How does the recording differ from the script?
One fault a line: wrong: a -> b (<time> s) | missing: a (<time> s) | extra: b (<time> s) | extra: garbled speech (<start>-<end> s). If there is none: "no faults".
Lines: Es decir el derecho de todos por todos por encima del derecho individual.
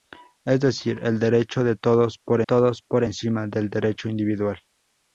no faults